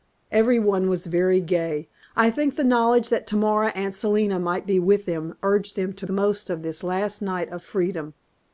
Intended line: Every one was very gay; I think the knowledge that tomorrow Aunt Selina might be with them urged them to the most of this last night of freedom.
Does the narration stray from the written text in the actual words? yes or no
no